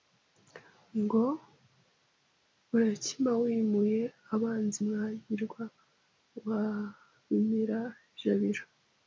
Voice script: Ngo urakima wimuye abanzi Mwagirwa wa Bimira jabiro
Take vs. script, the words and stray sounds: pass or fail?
pass